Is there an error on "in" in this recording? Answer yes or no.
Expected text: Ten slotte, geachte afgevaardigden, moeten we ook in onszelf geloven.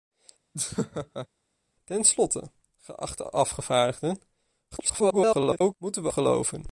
yes